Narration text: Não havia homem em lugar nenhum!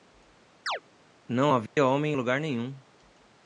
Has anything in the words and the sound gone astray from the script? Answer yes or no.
yes